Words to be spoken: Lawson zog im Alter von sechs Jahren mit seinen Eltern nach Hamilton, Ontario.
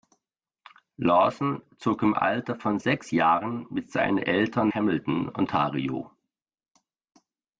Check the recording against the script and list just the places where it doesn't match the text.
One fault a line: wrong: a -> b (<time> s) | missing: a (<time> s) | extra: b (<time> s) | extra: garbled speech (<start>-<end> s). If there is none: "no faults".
missing: nach (4.7 s)